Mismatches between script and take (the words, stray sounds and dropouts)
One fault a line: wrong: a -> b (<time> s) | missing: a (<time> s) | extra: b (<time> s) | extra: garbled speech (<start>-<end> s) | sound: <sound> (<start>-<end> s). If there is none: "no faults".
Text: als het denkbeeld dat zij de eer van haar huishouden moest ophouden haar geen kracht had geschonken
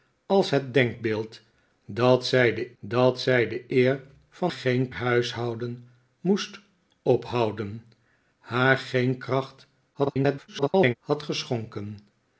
extra: dat zij de (2.8 s)
wrong: haar -> geen (4.5 s)
extra: garbled speech (9.9-10.9 s)